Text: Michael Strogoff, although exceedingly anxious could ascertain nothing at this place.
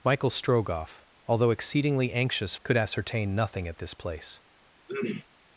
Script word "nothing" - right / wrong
right